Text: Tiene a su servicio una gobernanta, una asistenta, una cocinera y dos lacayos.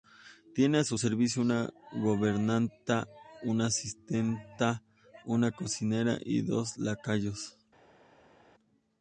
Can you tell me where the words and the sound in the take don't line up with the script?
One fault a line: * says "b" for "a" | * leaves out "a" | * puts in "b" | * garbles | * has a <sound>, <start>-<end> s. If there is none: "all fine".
all fine